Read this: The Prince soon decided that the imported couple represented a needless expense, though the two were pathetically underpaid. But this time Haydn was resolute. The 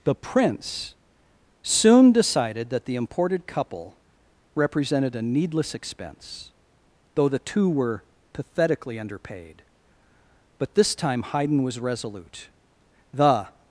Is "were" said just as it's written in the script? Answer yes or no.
yes